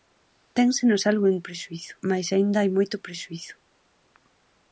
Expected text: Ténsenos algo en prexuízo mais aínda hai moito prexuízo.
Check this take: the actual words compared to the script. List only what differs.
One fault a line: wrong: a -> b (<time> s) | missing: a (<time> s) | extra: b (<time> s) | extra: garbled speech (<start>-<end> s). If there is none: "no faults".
no faults